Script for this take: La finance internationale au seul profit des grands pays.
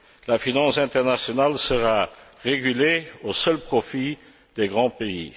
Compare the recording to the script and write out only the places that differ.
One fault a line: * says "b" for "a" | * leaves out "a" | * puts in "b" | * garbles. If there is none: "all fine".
* puts in "sera régulée"